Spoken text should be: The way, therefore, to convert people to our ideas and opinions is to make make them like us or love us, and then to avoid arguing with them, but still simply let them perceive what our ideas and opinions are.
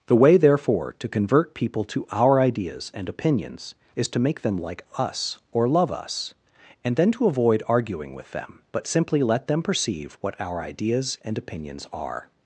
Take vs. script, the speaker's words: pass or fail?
fail